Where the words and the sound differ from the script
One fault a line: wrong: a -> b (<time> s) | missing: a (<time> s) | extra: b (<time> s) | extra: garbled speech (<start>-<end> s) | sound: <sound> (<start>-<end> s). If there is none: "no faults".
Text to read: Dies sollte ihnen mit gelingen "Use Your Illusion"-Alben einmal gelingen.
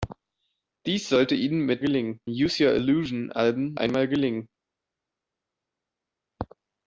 no faults